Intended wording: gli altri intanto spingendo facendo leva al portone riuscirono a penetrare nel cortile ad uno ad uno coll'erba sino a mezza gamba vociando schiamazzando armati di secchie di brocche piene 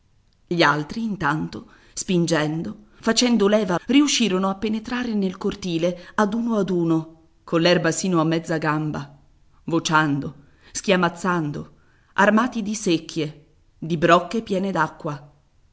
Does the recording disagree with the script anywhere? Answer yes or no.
yes